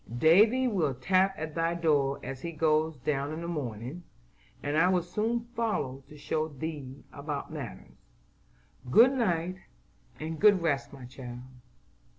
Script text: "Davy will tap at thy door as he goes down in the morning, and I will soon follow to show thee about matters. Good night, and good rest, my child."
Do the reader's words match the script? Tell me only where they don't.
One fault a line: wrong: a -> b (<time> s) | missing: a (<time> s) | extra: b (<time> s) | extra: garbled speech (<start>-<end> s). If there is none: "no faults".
no faults